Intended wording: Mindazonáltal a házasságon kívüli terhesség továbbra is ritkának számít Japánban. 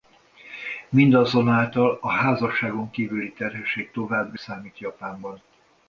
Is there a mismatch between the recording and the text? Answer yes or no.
yes